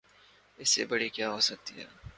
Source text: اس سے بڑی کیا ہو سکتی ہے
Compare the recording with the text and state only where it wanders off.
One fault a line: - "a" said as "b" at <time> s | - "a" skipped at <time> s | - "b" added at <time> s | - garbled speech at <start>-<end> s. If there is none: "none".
none